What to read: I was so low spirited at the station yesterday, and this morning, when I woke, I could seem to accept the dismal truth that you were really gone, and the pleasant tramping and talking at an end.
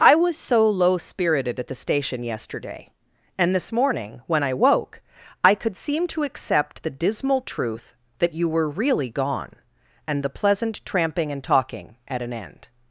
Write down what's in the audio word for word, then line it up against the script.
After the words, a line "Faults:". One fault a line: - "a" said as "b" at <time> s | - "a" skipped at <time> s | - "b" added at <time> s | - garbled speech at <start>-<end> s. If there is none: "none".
I was so low spirited at the station yesterday, and this morning, when I woke, I could seem to accept the dismal truth that you were really gone, and the pleasant tramping and talking at an end.
Faults:
none